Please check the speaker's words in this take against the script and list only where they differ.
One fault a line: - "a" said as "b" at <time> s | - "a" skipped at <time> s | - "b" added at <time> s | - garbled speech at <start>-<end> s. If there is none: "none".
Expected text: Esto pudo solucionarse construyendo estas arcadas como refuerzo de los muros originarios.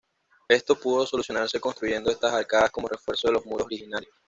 none